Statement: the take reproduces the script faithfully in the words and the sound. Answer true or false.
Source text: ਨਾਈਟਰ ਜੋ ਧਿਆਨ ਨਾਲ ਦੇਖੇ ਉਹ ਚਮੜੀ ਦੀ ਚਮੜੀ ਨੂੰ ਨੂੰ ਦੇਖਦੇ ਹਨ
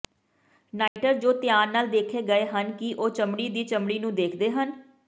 false